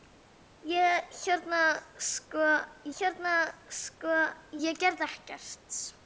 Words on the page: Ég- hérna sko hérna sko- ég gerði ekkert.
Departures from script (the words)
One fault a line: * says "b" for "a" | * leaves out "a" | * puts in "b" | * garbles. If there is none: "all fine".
all fine